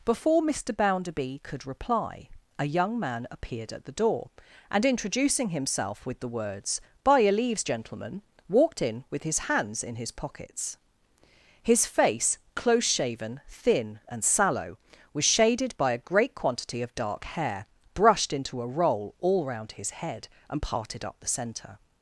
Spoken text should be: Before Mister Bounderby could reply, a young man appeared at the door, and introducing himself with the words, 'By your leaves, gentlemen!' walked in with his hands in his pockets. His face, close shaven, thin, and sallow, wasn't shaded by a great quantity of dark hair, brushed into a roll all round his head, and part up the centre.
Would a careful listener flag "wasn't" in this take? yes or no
yes